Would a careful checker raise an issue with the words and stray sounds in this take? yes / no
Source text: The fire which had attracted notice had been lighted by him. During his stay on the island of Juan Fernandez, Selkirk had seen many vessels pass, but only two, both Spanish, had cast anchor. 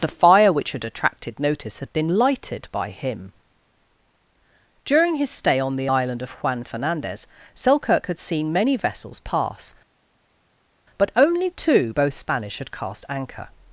no